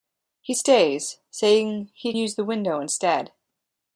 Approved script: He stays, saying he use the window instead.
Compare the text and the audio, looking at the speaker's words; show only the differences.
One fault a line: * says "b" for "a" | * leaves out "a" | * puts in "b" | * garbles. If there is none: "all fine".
all fine